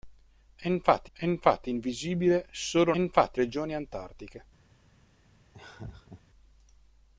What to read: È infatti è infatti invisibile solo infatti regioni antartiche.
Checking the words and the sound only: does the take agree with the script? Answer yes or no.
no